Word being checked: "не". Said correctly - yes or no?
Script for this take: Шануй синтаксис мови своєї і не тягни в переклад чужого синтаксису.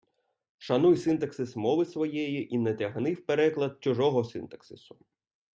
yes